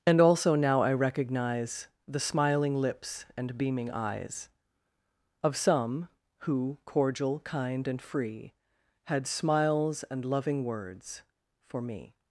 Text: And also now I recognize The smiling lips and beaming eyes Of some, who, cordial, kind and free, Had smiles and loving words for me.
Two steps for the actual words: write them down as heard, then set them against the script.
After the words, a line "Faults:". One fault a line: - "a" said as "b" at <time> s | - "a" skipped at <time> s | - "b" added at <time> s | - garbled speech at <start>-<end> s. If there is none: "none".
And also now I recognize The smiling lips and beaming eyes Of some, who, cordial, kind and free, Had smiles and loving words for me.
Faults:
none